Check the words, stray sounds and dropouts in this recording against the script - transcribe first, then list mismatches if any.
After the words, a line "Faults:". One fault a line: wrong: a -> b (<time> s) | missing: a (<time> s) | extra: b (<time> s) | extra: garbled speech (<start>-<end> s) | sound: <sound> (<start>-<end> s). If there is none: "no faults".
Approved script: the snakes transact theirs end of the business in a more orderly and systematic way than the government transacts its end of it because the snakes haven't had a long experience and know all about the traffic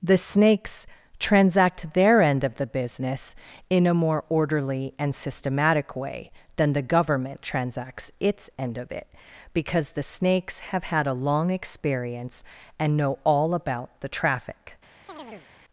the snakes transact their end of the business in a more orderly and systematic way than the government transacts its end of it because the snakes have had a long experience and know all about the traffic
Faults:
wrong: theirs -> their (1.9 s)
wrong: haven't -> have (10.7 s)
sound: chirp (15.1-15.5 s)